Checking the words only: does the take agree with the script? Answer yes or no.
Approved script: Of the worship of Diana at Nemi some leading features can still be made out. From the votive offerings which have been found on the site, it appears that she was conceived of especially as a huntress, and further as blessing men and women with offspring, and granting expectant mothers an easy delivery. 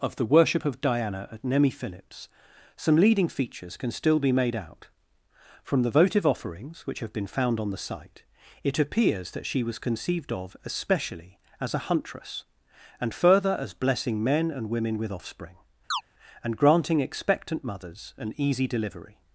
no